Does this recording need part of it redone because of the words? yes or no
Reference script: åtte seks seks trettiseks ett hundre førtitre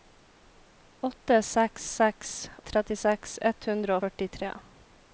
no